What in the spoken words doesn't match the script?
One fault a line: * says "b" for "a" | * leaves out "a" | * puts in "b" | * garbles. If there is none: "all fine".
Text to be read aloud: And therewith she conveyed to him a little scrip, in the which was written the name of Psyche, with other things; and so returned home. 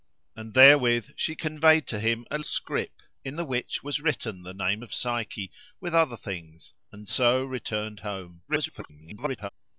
* leaves out "little"
* garbles